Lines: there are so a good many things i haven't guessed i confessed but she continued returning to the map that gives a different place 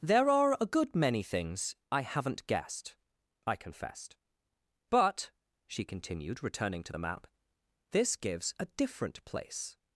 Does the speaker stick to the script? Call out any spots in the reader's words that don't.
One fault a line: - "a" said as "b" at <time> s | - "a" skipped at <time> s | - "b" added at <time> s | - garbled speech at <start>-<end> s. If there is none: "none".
- "so" skipped at 0.6 s
- "that" said as "this" at 7.9 s